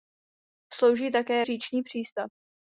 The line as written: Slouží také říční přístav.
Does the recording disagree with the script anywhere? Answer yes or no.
no